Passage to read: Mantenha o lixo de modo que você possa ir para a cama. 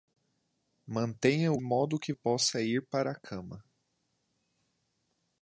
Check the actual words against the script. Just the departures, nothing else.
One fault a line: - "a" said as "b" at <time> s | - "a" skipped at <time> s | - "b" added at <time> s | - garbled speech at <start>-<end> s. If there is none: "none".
- "lixo de" skipped at 1.6 s
- "você" skipped at 2.1 s